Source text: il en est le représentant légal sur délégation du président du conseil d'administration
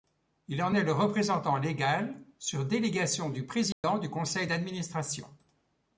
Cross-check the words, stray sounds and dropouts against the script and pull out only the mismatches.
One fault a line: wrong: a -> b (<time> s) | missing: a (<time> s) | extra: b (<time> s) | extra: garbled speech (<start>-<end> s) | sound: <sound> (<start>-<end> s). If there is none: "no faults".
sound: dropout (3.7-3.8 s)